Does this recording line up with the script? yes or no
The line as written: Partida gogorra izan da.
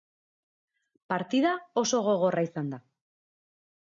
no